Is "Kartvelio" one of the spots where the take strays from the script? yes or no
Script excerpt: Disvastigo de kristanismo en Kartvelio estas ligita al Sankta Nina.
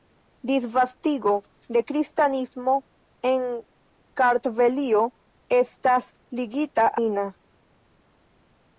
no